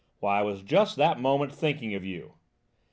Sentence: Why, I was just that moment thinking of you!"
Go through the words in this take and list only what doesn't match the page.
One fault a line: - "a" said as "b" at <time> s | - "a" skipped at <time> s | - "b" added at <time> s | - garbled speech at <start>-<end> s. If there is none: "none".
none